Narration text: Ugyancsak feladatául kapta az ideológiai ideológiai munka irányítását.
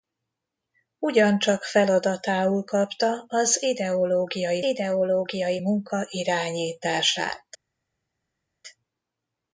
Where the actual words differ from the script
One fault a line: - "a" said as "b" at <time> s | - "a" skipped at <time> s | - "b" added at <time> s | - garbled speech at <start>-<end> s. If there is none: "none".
none